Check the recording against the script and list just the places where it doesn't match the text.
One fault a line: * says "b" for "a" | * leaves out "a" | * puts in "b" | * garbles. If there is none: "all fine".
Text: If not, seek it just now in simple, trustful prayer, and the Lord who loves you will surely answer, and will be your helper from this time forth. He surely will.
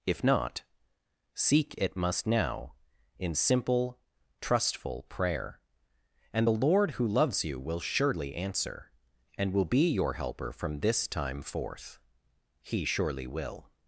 * says "must" for "just"